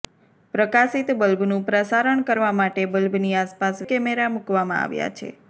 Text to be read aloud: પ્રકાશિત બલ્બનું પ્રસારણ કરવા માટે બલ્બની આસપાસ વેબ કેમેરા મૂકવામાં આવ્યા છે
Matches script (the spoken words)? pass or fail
fail